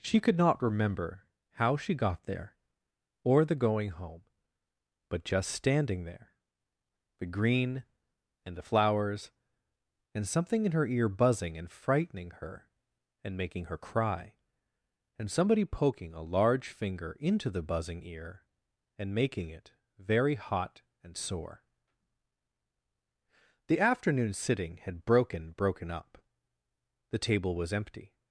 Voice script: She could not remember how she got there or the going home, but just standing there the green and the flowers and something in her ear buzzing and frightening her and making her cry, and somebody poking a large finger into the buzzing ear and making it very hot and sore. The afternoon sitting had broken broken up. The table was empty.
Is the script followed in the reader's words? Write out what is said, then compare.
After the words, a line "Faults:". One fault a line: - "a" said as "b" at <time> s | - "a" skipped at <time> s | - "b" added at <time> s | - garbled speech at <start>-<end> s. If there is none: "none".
She could not remember how she got there or the going home, but just standing there the green and the flowers and something in her ear buzzing and frightening her and making her cry, and somebody poking a large finger into the buzzing ear and making it very hot and sore. The afternoon sitting had broken broken up. The table was empty.
Faults:
none